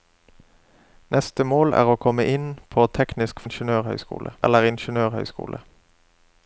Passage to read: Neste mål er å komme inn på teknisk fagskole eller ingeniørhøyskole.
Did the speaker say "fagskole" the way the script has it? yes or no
no